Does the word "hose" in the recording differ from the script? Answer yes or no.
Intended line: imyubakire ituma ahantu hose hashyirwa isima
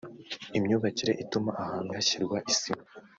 yes